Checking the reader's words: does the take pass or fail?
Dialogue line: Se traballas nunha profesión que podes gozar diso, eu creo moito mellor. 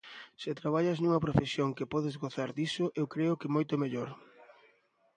fail